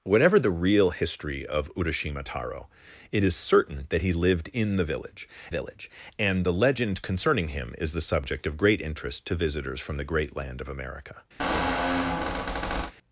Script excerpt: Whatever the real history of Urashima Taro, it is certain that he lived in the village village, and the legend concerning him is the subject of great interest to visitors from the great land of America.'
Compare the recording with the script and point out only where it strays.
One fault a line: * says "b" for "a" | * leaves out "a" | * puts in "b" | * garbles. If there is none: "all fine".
all fine